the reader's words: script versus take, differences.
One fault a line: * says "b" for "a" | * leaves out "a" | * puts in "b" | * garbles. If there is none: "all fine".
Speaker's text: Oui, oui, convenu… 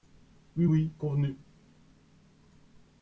all fine